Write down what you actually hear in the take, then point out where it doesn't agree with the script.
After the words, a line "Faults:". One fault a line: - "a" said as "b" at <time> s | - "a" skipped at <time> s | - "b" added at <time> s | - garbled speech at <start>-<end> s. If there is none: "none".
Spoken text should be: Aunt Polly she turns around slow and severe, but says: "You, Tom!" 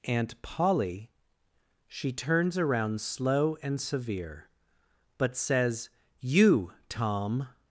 Aunt Polly she turns around slow and severe, but says: "You, Tom!"
Faults:
none